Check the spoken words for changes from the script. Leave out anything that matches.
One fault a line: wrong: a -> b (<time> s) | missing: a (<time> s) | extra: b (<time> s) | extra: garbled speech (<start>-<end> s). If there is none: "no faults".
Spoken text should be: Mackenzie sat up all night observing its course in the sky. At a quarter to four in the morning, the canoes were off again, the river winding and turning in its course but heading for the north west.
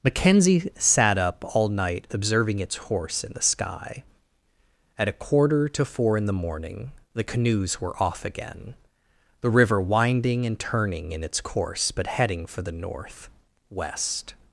wrong: course -> horse (2.8 s)